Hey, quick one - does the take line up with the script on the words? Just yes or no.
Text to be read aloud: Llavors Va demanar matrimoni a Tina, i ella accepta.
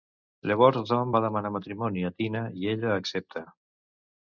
no